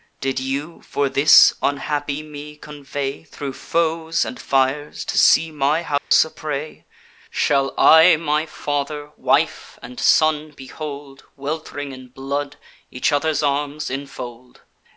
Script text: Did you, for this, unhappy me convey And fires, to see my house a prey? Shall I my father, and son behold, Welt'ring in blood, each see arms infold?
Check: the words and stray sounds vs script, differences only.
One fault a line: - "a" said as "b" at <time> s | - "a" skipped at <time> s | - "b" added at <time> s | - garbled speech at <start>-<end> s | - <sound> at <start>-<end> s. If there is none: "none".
- "Thro foes" added at 3.2 s
- dropout at 6.0-6.1 s
- "wife" added at 9.2 s
- "see" said as "other's" at 13.1 s